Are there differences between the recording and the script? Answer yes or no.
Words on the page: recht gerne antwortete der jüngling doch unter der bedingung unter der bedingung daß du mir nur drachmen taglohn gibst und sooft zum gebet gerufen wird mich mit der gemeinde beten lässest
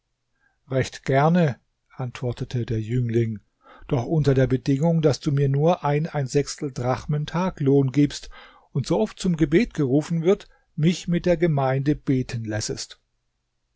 yes